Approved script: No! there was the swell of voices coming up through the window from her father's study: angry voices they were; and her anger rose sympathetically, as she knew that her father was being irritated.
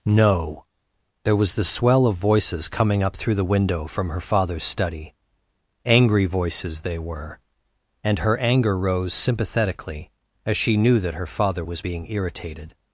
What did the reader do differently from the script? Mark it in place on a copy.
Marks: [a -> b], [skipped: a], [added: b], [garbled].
No! there was the swell of voices coming up through the window from her father's study: angry voices they were; and her anger rose sympathetically, as she knew that her father was being irritated.